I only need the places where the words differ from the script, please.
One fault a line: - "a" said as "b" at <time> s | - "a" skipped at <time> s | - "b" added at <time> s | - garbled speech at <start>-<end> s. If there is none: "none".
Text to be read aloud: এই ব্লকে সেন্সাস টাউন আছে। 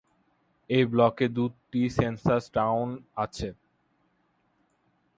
- "দুটি" added at 1.4 s